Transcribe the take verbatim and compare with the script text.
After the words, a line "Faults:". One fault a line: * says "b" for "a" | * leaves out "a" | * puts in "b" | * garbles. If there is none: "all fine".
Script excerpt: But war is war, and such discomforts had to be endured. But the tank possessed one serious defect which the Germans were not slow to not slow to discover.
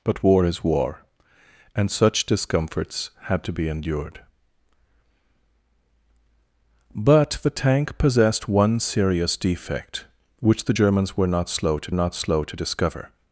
But war is war, and such discomforts had to be endured. But the tank possessed one serious defect which the Germans were not slow to not slow to discover.
Faults:
all fine